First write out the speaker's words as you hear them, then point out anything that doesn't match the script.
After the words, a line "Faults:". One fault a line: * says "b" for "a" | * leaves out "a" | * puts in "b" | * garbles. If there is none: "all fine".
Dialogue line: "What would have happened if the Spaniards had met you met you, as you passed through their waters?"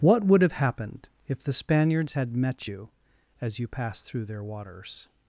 "What would have happened if the Spaniards had met you, as you passed through their waters?"
Faults:
* leaves out "met you"